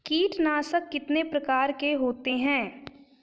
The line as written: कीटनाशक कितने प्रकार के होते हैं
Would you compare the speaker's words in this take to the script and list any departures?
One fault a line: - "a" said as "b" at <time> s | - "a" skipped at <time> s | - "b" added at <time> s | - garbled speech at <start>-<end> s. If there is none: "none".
none